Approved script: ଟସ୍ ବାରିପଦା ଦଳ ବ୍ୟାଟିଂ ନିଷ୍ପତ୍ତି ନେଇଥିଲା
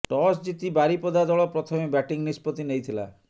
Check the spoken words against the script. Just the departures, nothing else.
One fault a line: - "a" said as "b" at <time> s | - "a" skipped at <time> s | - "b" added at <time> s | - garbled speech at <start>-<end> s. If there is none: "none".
- "ଜିତି" added at 0.4 s
- "ପ୍ରଥମେ" added at 1.5 s